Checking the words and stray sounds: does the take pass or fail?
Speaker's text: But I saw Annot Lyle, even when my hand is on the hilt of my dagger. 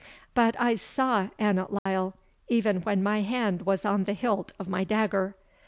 fail